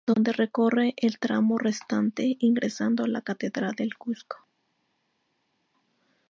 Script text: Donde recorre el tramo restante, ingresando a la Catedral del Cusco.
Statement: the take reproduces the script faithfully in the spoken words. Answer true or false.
true